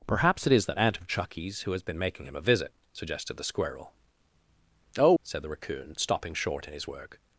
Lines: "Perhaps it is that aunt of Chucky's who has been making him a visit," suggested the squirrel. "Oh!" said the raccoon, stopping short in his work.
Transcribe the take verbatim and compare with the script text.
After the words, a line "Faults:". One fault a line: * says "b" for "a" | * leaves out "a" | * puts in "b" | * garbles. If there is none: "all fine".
"Perhaps it is that aunt of Chucky's who has been making him a visit," suggested the squirrel. "Oh!" said the raccoon, stopping short in his work.
Faults:
all fine